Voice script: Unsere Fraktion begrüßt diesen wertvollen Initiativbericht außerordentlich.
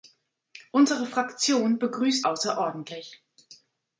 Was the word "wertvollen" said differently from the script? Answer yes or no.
yes